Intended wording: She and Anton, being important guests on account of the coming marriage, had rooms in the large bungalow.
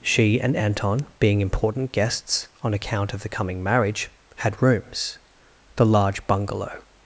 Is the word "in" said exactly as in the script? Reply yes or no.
no